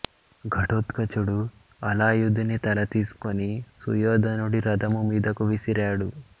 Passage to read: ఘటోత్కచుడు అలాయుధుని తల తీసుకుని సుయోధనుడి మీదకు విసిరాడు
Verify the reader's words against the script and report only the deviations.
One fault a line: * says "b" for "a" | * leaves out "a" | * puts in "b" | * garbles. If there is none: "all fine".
* puts in "రథము"